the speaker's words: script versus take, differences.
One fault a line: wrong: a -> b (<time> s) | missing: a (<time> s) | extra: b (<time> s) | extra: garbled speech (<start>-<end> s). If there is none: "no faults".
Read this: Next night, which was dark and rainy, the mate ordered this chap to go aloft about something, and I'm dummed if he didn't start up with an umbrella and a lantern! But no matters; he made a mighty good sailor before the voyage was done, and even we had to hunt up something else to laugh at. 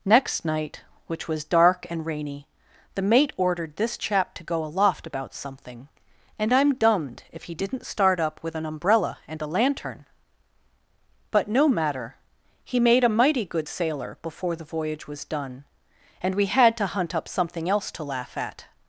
wrong: matters -> matter (11.7 s)
missing: even (16.3 s)